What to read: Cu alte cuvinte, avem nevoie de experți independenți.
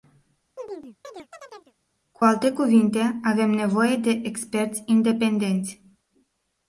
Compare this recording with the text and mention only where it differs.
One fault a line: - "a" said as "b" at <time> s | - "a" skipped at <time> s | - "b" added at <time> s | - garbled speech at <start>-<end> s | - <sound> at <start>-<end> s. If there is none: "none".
- chirp at 0.6-1.7 s